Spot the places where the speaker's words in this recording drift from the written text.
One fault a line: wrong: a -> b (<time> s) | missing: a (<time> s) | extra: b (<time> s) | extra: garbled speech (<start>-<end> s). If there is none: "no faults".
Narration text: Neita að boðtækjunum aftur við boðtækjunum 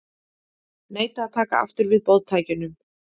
wrong: boðtækjunum -> taka (1.4 s)